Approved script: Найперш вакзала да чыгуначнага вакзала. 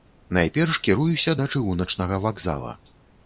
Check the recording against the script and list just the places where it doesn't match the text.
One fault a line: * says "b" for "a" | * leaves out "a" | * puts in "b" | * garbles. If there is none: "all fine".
* says "кіруюся" for "вакзала"